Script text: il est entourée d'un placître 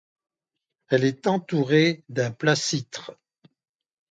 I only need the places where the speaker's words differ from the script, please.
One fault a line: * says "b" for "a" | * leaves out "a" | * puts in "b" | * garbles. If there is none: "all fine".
* says "elle" for "il"